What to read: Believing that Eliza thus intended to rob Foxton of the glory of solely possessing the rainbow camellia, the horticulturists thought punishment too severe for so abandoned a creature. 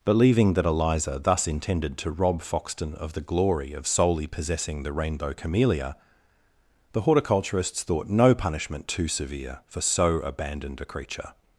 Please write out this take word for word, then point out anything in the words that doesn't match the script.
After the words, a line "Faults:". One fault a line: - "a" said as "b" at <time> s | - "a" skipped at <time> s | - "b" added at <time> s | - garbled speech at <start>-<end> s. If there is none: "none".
Believing that Eliza thus intended to rob Foxton of the glory of solely possessing the rainbow camellia, the horticulturists thought no punishment too severe for so abandoned a creature.
Faults:
- "no" added at 8.1 s